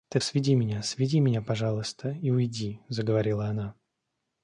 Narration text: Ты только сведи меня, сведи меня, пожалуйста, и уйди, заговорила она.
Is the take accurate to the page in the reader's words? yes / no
no